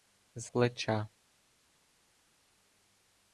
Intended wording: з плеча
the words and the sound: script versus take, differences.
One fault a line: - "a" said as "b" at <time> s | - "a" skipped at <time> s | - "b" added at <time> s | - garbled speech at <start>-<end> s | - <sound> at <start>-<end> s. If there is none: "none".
none